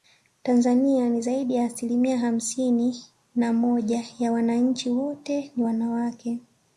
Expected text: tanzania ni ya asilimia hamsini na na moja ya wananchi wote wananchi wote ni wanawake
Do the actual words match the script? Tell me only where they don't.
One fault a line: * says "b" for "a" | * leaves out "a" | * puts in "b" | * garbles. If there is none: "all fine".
* puts in "zaidi"
* leaves out "na"
* leaves out "wananchi wote"